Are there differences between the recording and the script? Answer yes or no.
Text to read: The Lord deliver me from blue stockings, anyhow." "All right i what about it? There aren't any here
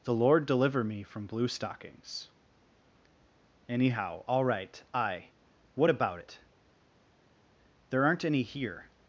no